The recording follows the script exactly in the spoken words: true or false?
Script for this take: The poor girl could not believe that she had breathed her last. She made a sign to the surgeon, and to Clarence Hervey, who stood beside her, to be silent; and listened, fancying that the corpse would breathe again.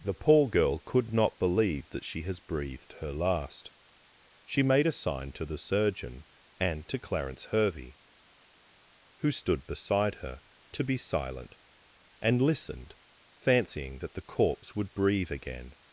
false